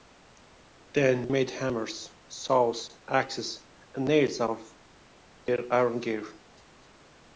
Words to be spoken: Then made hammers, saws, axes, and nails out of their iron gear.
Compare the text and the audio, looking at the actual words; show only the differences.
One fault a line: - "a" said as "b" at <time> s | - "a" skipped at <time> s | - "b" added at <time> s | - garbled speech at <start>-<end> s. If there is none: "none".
none